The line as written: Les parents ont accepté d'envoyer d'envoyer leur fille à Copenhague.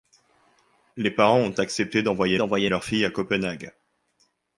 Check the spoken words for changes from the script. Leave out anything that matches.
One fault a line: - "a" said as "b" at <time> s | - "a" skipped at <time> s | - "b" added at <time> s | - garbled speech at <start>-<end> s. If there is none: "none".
none